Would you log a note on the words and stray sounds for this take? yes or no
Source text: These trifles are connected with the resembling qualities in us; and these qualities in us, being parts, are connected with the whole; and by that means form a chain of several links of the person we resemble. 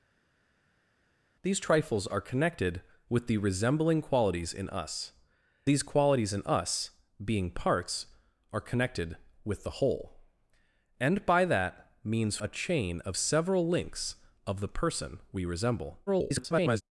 yes